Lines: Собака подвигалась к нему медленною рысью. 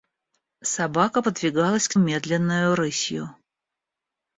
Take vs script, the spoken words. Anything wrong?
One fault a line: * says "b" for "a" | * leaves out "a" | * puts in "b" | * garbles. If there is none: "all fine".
* leaves out "нему"